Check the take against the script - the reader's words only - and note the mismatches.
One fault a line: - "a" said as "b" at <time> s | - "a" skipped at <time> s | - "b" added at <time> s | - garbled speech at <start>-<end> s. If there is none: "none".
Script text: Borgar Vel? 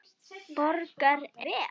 none